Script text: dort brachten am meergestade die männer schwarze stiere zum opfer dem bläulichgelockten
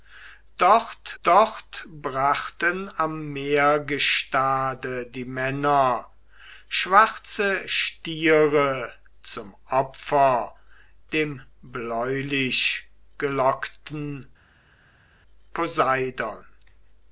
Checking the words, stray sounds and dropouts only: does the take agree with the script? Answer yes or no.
no